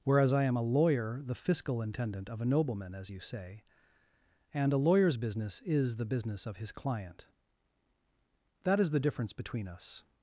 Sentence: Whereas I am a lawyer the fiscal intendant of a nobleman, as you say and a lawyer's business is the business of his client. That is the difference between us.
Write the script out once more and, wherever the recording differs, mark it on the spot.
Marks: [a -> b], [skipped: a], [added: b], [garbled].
Whereas I am a lawyer the fiscal intendant of a nobleman, as you say and a lawyer's business is the business of his client. That is the difference between us.